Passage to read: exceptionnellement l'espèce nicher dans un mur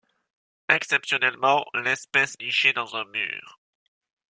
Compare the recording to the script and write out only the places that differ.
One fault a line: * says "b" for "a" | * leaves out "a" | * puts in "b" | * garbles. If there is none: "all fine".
all fine